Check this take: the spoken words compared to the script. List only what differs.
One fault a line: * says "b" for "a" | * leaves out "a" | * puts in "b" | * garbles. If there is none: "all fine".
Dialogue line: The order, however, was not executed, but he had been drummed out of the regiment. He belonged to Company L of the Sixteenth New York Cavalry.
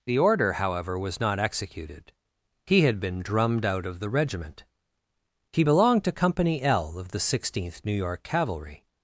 * leaves out "but"